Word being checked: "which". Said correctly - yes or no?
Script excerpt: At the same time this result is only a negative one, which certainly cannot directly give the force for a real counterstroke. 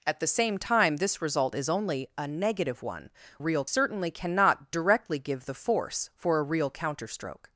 no